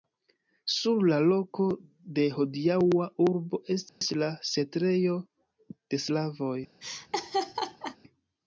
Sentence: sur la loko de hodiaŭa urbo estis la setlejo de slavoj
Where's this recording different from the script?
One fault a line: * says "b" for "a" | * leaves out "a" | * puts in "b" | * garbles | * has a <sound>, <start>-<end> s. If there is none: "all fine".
* has a dropout, 3.9-4.0 s
* has a laugh, 6.8-8.0 s